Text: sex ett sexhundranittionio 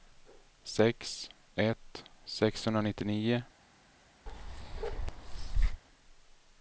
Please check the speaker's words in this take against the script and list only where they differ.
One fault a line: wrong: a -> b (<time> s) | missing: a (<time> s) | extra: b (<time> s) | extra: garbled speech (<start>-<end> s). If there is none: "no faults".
no faults